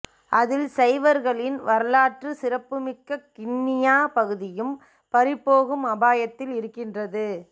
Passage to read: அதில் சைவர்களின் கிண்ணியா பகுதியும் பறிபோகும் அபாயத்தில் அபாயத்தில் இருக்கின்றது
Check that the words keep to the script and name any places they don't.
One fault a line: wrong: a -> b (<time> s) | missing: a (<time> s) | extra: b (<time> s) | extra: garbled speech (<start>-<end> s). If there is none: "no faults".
extra: வரலாற்று சிறப்புமிக்க (1.6 s)
missing: அபாயத்தில் (6.5 s)